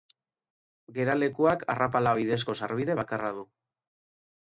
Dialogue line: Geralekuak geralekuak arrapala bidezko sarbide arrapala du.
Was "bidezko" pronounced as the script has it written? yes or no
yes